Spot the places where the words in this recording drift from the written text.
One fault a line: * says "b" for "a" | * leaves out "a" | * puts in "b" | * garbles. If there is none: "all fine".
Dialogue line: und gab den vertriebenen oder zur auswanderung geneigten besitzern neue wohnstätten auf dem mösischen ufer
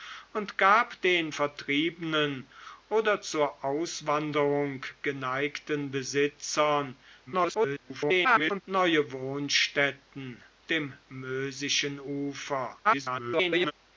* garbles
* leaves out "auf"
* garbles